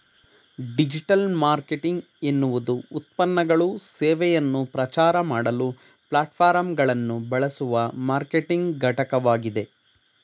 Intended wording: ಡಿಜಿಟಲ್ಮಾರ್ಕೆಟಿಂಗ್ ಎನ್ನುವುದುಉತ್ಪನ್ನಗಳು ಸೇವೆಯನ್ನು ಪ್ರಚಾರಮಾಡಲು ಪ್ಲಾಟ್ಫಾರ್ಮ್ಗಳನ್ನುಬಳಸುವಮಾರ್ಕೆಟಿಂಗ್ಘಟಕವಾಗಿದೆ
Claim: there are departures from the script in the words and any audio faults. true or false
false